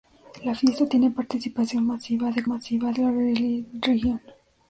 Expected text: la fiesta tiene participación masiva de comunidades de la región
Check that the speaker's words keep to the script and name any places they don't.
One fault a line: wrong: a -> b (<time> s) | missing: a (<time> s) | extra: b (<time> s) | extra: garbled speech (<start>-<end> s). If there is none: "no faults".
wrong: comunidades -> masiva (2.5 s)